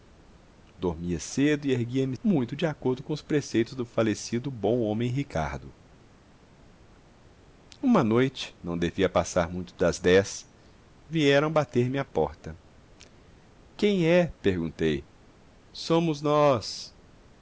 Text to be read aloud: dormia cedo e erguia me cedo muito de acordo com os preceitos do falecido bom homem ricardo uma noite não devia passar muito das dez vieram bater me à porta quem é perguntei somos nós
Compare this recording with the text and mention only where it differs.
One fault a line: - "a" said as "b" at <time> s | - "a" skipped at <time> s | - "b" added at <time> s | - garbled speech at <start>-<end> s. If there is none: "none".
- "cedo" skipped at 2.2 s